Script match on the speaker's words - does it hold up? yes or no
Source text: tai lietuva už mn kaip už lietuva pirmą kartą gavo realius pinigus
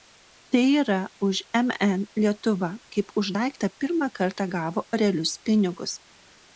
no